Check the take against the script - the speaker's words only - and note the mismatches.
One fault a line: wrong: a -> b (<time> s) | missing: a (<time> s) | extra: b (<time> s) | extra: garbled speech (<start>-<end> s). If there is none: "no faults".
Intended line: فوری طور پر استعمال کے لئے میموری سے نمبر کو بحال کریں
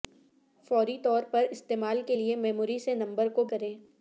missing: بحال (3.4 s)